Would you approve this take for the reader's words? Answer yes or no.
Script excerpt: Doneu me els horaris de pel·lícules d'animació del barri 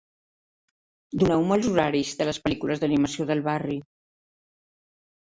no